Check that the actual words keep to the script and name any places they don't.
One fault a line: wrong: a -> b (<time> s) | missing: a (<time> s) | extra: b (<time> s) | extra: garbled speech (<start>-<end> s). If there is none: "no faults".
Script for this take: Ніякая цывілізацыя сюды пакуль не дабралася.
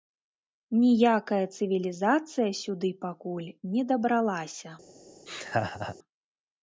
no faults